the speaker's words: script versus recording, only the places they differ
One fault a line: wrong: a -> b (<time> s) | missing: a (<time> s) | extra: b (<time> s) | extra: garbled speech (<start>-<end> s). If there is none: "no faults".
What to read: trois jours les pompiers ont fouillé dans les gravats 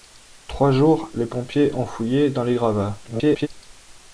extra: garbled speech (3.0-3.5 s)